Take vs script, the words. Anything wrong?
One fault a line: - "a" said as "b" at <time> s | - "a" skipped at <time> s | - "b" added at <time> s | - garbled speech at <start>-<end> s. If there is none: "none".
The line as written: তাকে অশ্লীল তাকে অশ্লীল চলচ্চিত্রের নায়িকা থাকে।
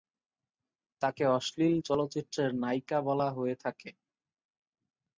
- "তাকে অশ্লীল চলচ্চিত্রের নায়িকা" said as "চলচ্চিত্রের নায়িকা বলা হয়ে" at 1.8 s